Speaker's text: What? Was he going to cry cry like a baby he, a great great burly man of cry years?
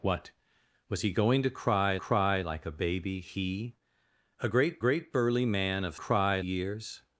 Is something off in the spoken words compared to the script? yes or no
no